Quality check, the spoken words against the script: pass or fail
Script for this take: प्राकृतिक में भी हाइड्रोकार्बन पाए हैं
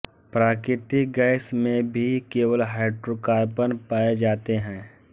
fail